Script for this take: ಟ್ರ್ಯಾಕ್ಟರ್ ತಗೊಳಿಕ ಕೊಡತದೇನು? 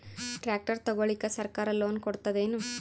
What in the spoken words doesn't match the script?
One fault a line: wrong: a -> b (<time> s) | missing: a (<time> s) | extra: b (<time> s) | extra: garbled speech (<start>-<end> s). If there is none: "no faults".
extra: ಸರ್ಕಾರ ಲೋನ್ (1.3 s)